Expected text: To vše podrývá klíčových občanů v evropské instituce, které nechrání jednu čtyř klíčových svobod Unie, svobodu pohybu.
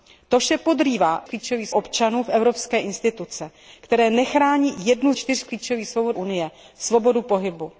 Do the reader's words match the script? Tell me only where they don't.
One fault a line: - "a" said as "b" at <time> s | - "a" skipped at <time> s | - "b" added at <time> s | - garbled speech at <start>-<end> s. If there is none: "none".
none